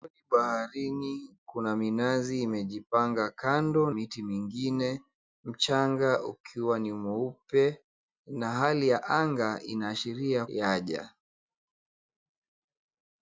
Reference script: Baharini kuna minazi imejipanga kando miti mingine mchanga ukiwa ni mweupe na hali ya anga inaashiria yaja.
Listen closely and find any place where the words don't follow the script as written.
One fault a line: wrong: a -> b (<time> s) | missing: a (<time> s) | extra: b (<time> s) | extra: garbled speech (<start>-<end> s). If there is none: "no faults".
no faults